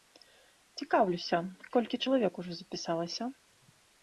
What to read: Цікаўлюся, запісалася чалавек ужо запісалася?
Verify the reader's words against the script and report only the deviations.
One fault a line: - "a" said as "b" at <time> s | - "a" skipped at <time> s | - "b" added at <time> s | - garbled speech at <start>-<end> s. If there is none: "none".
- "запісалася" said as "колькі" at 1.8 s